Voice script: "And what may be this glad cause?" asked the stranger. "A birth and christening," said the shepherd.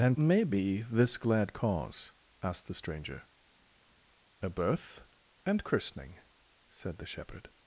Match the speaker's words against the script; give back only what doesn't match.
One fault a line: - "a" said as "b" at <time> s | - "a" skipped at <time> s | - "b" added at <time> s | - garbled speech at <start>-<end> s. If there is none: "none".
- "what" skipped at 0.2 s